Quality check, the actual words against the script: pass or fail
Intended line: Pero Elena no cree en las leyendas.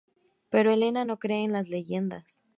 pass